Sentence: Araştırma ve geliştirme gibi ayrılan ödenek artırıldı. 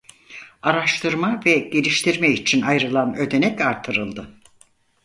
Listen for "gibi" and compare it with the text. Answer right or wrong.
wrong